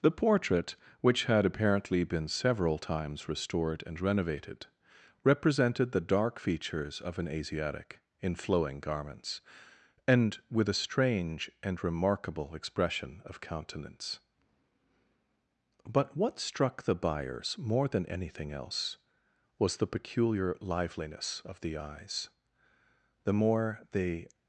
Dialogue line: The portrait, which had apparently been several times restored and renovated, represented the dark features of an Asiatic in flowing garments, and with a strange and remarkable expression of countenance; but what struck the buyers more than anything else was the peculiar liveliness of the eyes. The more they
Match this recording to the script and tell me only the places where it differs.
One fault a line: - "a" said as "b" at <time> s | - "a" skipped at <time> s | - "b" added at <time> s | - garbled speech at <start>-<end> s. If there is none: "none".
none